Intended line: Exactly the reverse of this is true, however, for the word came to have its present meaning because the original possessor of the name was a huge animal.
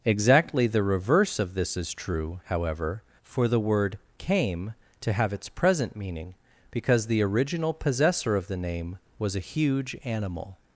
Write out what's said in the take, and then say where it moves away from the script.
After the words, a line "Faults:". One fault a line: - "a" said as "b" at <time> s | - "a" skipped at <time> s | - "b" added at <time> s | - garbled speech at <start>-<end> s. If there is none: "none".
Exactly the reverse of this is true, however, for the word came to have its present meaning because the original possessor of the name was a huge animal.
Faults:
none